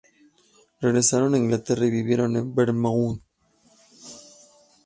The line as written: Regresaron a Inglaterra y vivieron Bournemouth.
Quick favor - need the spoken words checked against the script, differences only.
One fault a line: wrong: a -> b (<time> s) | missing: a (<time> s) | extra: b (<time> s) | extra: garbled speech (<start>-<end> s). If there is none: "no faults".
extra: en (2.4 s)